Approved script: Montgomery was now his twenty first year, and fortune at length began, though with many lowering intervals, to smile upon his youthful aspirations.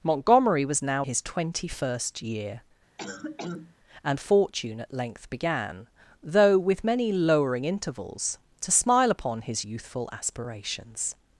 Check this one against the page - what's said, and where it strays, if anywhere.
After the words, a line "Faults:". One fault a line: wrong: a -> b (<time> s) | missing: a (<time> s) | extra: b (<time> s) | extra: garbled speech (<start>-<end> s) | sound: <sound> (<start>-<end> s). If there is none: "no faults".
Montgomery was now his twenty first year, and fortune at length began, though with many lowering intervals, to smile upon his youthful aspirations.
Faults:
sound: cough (3.0-3.8 s)